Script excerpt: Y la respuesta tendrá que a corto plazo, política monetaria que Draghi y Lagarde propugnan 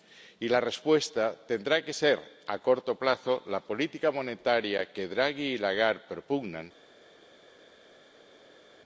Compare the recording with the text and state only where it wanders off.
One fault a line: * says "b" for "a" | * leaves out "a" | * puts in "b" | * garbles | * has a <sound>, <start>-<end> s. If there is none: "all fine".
* puts in "ser"
* puts in "la"